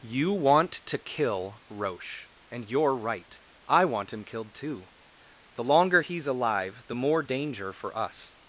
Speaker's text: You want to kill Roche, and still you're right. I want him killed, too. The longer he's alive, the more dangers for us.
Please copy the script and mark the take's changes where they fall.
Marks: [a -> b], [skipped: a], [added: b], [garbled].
You want to kill Roche, and [skipped: still] you're right. I want him killed, too. The longer he's alive, the more [dangers -> danger] for us.